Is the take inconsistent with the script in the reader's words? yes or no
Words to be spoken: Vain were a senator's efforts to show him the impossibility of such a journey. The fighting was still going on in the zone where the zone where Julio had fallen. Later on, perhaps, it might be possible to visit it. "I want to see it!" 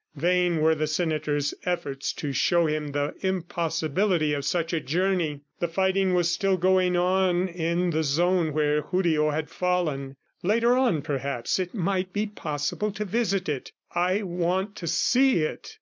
yes